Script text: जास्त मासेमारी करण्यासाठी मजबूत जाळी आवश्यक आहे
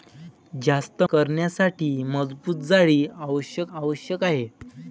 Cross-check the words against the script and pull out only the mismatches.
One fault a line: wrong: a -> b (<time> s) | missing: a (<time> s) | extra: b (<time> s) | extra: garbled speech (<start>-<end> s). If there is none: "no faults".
missing: मासेमारी (1.0 s)
extra: आवश्यक (3.7 s)